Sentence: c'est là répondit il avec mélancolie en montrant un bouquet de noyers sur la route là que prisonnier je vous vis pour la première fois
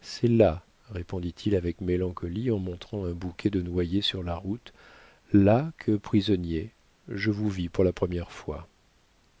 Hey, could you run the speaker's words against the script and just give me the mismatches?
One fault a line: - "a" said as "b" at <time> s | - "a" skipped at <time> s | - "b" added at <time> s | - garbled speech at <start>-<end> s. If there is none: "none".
none